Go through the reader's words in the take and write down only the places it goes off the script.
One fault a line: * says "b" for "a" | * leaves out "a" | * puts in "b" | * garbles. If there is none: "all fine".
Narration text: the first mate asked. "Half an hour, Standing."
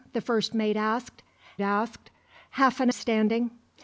* puts in "asked"
* leaves out "hour"